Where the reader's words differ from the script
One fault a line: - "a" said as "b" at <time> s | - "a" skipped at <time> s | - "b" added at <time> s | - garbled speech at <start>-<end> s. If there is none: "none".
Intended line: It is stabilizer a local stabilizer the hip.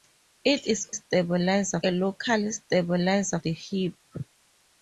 none